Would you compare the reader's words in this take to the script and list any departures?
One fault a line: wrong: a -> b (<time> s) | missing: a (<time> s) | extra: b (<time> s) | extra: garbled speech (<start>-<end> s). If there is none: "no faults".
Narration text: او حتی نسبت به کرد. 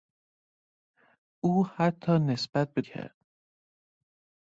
no faults